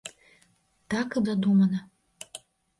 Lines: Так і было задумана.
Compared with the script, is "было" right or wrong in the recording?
wrong